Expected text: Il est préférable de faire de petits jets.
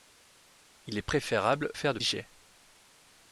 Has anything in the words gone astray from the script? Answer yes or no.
yes